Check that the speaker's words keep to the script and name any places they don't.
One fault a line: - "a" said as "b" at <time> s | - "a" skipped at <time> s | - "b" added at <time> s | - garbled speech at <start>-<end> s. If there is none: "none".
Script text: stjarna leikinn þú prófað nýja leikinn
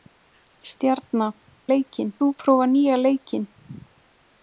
none